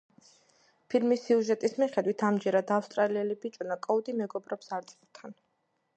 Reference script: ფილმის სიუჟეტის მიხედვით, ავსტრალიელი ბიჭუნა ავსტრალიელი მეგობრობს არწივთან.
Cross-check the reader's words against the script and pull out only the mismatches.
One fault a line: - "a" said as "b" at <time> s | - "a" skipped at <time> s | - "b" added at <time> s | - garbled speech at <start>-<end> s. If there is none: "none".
- "ამჯერად" added at 2.3 s
- "ავსტრალიელი" said as "კოუდი" at 3.9 s